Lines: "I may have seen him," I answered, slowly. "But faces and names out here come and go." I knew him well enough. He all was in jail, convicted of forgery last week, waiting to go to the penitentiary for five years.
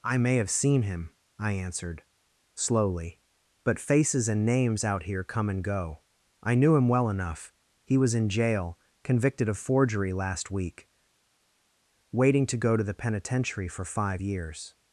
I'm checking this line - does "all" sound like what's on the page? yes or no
no